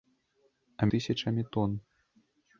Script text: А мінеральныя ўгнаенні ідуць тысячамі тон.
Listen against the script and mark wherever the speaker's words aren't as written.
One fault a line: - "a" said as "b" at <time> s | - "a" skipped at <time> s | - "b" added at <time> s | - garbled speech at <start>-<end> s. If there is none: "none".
- "мінеральныя ўгнаенні ідуць" skipped at 0.9 s